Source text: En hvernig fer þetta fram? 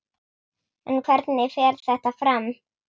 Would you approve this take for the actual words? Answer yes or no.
yes